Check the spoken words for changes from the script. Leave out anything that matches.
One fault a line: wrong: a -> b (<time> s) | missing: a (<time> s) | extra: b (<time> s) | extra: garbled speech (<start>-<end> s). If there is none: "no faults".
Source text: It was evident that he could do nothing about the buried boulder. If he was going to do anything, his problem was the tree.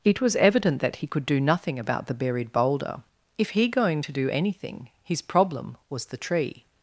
missing: was (3.7 s)